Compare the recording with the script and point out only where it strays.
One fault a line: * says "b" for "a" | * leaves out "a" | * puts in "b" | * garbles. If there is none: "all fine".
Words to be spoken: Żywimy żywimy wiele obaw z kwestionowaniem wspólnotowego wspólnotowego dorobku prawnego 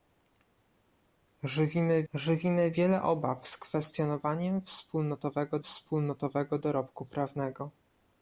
all fine